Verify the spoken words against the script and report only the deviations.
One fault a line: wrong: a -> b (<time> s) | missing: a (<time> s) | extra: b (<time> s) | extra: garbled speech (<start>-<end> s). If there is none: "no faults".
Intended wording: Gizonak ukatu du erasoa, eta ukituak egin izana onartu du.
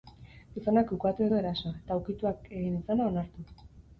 no faults